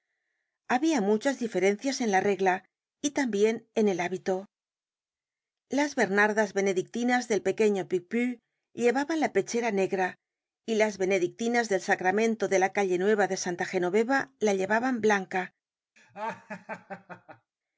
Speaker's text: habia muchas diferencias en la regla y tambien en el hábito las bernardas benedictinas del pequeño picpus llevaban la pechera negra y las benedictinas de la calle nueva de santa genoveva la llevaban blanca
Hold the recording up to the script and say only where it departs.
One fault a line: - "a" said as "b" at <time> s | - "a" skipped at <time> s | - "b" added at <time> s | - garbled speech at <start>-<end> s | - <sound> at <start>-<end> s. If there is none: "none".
- "del sacramento" added at 11.7 s
- laugh at 16.0-17.5 s